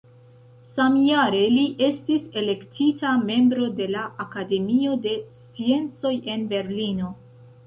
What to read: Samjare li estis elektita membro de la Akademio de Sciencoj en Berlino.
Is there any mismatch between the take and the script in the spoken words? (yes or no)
no